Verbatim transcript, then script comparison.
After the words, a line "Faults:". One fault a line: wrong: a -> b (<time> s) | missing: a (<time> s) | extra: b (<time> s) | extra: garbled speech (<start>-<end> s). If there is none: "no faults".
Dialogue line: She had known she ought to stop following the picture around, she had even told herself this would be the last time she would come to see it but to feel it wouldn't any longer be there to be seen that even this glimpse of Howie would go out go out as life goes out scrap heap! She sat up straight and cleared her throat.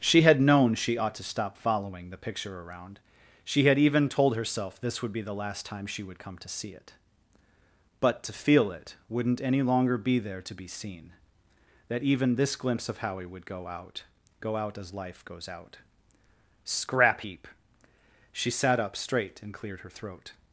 She had known she ought to stop following the picture around, she had even told herself this would be the last time she would come to see it but to feel it wouldn't any longer be there to be seen that even this glimpse of Howie would go out go out as life goes out scrap heap! She sat up straight and cleared her throat.
Faults:
no faults